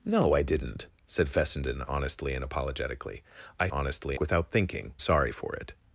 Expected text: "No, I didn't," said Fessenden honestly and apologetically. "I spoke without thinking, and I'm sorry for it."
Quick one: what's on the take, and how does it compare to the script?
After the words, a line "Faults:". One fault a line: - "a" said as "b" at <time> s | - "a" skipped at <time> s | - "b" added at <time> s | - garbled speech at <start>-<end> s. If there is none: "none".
"No, I didn't," said Fessenden honestly and apologetically. "I honestly without thinking, sorry for it."
Faults:
- "spoke" said as "honestly" at 3.7 s
- "and I'm" skipped at 4.9 s